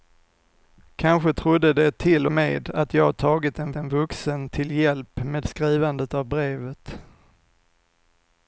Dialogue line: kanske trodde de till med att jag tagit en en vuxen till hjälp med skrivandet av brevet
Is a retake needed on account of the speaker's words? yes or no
no